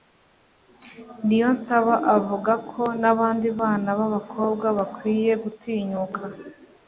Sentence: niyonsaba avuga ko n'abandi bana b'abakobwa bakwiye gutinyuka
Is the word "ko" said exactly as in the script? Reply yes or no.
yes